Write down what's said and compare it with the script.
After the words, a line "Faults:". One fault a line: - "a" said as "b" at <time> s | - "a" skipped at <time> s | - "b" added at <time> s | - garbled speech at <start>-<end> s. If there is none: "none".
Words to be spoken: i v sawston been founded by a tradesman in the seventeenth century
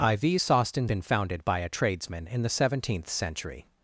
i v sawston been founded by a tradesman in the seventeenth century
Faults:
none